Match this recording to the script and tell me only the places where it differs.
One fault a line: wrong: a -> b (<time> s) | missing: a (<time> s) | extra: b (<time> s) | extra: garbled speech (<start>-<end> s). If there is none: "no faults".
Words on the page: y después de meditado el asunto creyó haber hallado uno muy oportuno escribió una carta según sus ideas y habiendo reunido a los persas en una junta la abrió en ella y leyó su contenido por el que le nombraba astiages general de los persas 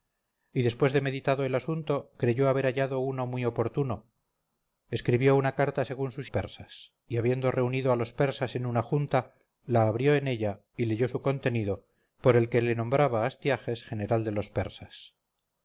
wrong: ideas -> persas (6.3 s)